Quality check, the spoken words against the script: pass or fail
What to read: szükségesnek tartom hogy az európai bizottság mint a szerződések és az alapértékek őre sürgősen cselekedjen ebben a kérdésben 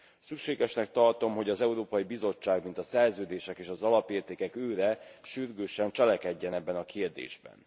pass